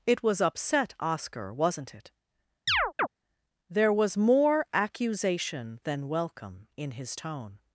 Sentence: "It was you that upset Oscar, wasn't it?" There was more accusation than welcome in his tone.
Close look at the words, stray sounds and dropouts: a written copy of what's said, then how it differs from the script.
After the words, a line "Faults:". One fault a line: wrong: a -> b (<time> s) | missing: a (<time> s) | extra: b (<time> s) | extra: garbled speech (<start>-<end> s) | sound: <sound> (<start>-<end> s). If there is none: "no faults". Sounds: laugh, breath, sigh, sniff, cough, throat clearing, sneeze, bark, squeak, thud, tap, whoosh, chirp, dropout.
"It was upset Oscar, wasn't it?" There was more accusation than welcome in his tone.
Faults:
missing: you that (0.4 s)
sound: chirp (2.7-3.1 s)